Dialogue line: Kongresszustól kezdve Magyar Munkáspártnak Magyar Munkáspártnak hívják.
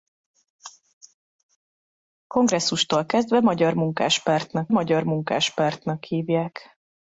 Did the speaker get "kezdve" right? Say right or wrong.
right